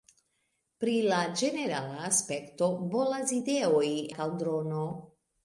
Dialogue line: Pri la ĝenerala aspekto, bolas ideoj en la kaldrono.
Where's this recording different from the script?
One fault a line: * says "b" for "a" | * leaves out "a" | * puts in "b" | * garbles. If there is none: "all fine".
* leaves out "en la"